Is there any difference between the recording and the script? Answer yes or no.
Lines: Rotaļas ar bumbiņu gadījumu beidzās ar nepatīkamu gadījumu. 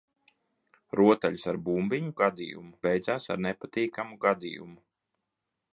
no